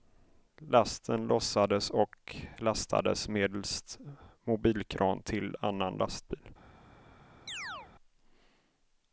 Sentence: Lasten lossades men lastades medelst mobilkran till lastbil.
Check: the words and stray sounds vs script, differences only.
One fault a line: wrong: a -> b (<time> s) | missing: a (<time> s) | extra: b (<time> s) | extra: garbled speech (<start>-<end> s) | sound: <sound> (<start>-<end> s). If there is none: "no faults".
wrong: men -> och (1.9 s)
extra: annan (5.6 s)
sound: chirp (7.5-7.9 s)